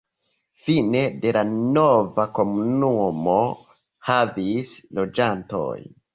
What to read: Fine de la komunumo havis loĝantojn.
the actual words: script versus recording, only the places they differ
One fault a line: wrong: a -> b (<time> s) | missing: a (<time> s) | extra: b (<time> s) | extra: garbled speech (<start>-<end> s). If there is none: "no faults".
extra: nova (1.8 s)